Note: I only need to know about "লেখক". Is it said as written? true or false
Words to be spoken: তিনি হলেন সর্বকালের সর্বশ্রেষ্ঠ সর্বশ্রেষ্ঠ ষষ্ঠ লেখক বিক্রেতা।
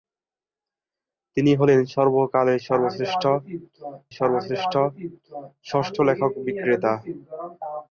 true